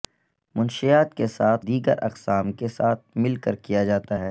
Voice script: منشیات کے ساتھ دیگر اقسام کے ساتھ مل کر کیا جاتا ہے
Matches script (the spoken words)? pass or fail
pass